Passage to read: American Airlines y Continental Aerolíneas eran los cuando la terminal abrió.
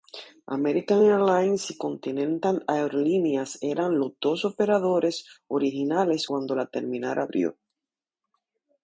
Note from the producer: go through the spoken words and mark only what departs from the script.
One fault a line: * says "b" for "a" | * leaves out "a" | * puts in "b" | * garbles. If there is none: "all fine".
* puts in "dos operadores originales"